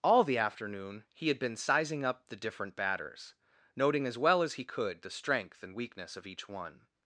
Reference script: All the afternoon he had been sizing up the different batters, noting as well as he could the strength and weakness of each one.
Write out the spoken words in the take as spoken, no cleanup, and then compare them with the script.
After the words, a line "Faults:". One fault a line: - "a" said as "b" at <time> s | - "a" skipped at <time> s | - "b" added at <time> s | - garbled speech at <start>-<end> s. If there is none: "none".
All the afternoon he had been sizing up the different batters, noting as well as he could the strength and weakness of each one.
Faults:
none